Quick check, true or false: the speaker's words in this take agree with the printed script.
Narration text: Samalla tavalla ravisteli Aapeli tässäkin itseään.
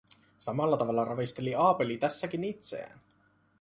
true